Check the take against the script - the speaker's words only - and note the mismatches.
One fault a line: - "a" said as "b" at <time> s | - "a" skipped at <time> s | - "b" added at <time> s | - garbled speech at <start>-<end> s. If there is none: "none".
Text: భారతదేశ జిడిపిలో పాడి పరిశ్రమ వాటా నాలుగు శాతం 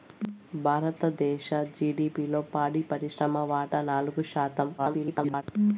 - garbled speech at 4.8-5.4 s